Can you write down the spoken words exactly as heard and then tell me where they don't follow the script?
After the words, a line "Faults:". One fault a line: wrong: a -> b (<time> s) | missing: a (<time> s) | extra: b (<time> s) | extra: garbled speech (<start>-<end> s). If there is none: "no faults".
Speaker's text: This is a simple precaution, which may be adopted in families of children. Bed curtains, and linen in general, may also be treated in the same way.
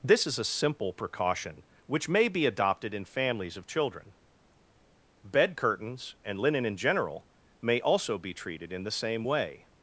This is a simple precaution, which may be adopted in families of children. Bed curtains, and linen in general, may also be treated in the same way.
Faults:
no faults